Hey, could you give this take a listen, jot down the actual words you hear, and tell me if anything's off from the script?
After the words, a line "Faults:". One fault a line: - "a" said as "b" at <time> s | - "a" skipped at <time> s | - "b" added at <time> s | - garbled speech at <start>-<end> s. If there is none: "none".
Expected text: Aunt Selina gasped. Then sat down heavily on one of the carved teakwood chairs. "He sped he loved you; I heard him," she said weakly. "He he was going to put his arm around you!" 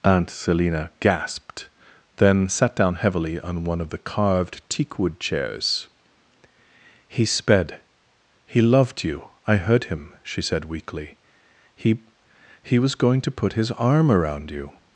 Aunt Selina gasped. Then sat down heavily on one of the carved teakwood chairs. "He sped he loved you; I heard him," she said weakly. "He he was going to put his arm around you!"
Faults:
none